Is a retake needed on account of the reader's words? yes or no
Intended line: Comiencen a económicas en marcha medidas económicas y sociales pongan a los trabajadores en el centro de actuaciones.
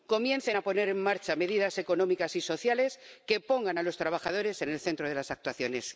yes